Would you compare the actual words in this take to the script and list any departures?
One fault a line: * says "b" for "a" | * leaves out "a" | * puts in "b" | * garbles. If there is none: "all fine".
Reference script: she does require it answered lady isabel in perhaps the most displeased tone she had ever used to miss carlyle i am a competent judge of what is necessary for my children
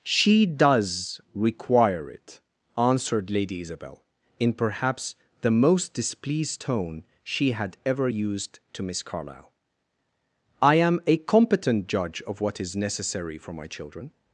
all fine